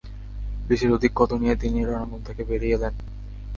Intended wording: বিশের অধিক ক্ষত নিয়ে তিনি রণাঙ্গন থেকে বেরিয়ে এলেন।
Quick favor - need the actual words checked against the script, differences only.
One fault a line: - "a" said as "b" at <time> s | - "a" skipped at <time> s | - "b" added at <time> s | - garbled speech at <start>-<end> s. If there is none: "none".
none